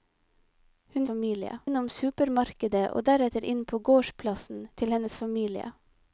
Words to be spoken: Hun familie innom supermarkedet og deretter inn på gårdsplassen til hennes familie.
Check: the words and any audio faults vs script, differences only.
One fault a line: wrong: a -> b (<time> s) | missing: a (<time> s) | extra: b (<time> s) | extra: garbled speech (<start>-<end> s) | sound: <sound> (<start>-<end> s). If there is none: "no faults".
no faults